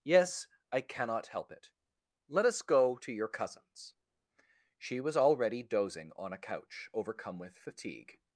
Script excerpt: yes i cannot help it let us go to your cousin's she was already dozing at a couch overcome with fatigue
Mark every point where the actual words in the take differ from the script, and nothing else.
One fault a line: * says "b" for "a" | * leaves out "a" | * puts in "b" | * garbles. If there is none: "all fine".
* says "on" for "at"